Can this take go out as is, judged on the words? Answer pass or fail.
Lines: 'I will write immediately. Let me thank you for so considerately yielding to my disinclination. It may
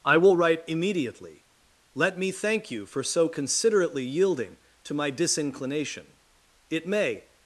pass